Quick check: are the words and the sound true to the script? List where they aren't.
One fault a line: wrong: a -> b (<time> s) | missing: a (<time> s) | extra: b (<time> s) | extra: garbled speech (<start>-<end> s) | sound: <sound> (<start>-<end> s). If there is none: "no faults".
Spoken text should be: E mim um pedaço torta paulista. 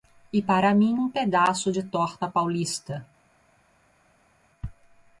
extra: para (0.4 s)
extra: de (1.7 s)